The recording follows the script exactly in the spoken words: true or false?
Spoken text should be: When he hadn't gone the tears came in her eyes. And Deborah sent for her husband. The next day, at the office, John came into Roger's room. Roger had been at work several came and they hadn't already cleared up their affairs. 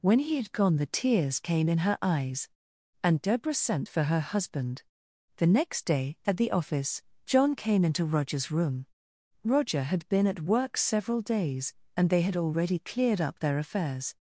false